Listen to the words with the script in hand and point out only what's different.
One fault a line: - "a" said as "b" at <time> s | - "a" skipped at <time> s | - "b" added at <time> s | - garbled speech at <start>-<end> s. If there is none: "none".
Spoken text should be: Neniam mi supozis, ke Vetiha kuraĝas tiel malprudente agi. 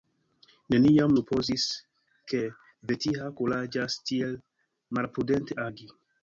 - "mi" skipped at 1.1 s